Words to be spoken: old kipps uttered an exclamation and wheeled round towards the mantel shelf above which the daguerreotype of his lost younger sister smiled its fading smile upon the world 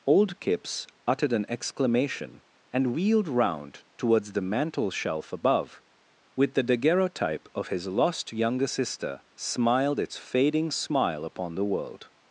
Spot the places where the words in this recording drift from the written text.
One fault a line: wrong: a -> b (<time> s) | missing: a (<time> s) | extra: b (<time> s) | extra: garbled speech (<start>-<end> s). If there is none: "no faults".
wrong: which -> with (6.4 s)